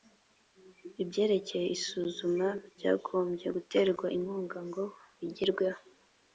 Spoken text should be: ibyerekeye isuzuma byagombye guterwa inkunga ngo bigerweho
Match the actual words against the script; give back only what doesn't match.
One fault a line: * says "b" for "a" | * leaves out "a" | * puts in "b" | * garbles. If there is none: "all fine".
all fine